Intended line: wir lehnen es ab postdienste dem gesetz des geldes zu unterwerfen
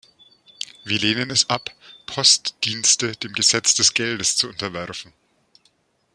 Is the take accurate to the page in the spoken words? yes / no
yes